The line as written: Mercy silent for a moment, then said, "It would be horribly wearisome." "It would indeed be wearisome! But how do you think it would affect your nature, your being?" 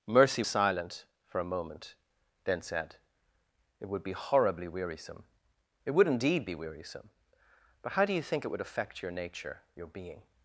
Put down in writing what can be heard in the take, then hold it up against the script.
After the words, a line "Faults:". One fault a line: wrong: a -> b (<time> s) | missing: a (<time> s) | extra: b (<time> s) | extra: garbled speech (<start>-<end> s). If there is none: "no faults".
Mercy silent for a moment, then said, "It would be horribly wearisome." "It would indeed be wearisome! But how do you think it would affect your nature, your being?"
Faults:
no faults